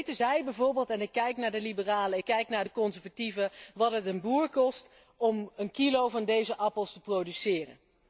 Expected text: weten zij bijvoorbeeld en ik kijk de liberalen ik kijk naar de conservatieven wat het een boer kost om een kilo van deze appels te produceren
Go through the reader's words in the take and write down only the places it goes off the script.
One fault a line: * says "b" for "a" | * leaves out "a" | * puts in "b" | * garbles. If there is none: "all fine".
* puts in "naar"